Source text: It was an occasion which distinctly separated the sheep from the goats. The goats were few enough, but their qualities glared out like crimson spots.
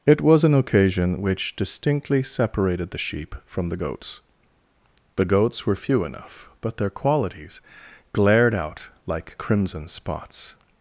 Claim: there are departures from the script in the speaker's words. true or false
false